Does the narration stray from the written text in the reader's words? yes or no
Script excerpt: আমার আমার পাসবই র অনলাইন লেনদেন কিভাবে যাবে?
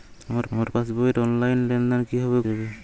no